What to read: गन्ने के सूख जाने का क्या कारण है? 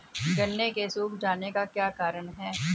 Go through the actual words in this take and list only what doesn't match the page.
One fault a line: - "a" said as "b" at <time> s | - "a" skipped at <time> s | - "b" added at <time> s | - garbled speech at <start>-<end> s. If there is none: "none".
none